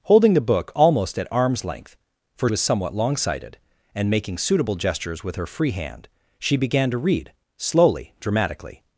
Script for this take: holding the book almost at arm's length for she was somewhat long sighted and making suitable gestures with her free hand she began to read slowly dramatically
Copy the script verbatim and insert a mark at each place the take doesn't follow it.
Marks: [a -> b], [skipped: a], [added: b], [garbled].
holding the book almost at arm's length for [skipped: she] was somewhat long sighted and making suitable gestures with her free hand she began to read slowly dramatically